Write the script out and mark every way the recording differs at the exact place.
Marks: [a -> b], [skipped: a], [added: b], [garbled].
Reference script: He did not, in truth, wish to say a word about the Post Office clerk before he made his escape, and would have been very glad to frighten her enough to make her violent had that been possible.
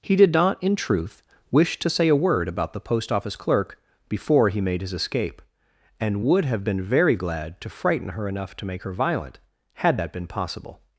He did not, in truth, wish to say a word about the Post Office clerk before he made his escape, and would have been very glad to frighten her enough to make her violent had that been possible.